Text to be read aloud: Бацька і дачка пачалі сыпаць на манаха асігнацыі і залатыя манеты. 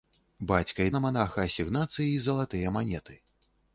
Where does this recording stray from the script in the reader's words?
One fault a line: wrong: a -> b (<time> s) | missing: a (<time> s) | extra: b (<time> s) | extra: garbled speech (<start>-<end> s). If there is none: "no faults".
missing: дачка пачалі сыпаць (0.9 s)